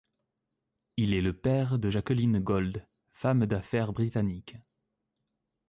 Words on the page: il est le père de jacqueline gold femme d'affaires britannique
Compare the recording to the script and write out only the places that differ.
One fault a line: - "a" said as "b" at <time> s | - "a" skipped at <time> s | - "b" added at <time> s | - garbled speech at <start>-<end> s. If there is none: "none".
none